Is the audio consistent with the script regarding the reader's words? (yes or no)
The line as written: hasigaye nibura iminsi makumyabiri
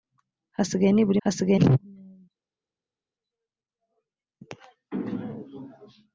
no